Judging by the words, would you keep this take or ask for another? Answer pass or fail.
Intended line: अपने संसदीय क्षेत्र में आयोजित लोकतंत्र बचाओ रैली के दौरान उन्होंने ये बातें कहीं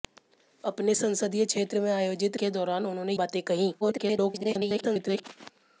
fail